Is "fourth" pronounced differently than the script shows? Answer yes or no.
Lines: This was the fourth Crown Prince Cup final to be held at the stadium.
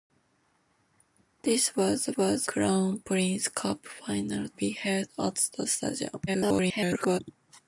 yes